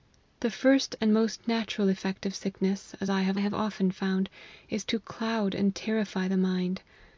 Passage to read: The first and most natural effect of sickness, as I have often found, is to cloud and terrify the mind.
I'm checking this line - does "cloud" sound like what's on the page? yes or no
yes